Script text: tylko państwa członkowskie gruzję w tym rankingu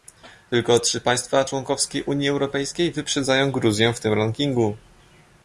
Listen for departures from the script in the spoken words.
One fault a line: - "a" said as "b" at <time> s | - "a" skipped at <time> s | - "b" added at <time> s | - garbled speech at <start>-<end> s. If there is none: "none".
- "trzy" added at 0.8 s
- "unii europejskiej wyprzedzają" added at 2.0 s